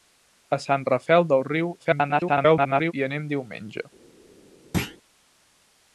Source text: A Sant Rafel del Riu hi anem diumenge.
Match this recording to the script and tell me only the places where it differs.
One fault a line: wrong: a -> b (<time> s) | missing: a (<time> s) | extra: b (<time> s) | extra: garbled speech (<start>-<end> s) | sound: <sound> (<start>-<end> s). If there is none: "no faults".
extra: garbled speech (1.8-2.9 s)
sound: thud (4.7-5.0 s)